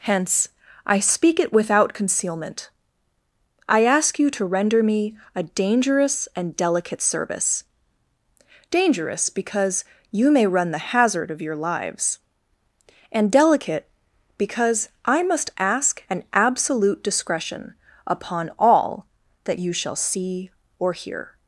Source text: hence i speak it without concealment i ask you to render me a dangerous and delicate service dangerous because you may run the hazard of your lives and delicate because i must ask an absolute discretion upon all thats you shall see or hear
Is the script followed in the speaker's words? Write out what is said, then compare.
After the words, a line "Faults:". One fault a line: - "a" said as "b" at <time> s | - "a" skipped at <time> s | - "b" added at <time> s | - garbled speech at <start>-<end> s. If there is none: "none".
hence i speak it without concealment i ask you to render me a dangerous and delicate service dangerous because you may run the hazard of your lives and delicate because i must ask an absolute discretion upon all that you shall see or hear
Faults:
- "thats" said as "that" at 19.4 s